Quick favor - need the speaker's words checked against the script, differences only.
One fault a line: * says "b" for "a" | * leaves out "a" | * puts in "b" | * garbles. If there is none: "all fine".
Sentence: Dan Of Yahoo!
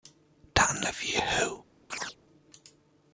all fine